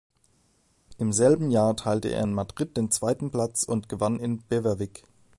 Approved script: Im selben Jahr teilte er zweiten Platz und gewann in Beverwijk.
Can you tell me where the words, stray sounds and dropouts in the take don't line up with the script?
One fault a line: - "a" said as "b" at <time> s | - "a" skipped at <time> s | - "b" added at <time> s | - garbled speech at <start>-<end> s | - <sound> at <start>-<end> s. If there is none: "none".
- "in Madrid den" added at 2.2 s